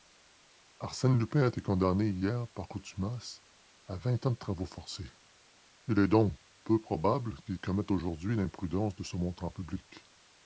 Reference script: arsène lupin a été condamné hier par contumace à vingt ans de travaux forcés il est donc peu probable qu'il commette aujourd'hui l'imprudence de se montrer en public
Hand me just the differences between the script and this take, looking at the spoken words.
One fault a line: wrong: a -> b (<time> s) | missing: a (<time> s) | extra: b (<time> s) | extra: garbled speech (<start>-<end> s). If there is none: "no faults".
no faults